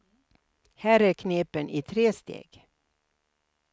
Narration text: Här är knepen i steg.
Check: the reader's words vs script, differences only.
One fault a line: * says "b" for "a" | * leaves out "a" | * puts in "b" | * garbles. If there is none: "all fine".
* puts in "tre"